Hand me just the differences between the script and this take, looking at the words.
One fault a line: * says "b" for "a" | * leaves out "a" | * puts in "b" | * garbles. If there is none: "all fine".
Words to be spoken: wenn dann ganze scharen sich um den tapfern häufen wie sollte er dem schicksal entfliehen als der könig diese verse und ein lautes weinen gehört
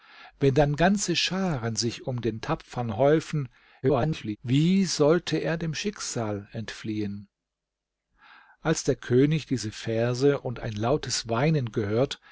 * garbles